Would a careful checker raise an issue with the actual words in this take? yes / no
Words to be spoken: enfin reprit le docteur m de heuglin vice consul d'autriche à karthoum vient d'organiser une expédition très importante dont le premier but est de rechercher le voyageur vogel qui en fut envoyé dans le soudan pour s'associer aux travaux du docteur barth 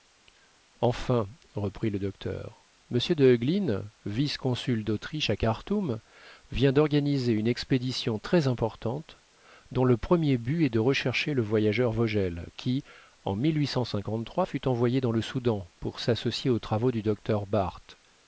no